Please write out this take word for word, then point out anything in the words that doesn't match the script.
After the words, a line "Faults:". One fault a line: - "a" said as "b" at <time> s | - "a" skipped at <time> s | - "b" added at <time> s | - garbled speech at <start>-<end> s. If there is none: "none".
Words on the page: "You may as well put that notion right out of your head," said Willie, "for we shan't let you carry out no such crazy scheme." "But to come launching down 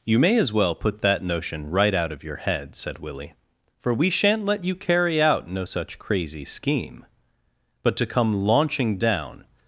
"You may as well put that notion right out of your head," said Willie, "for we shan't let you carry out no such crazy scheme." "But to come launching down
Faults:
none